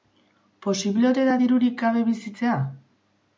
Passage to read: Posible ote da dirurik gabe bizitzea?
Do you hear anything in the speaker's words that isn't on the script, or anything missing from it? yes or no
no